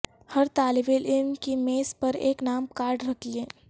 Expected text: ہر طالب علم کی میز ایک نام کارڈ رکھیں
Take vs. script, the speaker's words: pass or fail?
fail